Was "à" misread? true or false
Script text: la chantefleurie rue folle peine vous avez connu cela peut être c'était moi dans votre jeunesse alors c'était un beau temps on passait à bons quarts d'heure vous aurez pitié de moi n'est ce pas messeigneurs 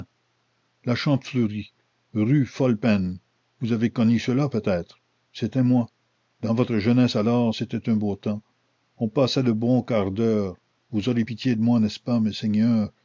true